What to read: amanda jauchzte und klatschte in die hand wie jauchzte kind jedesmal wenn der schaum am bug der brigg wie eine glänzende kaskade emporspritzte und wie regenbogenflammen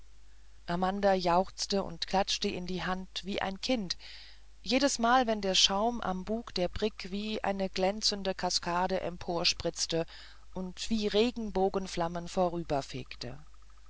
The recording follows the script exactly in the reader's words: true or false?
false